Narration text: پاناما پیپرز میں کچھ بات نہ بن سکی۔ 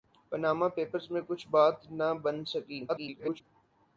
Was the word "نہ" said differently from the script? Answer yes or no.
no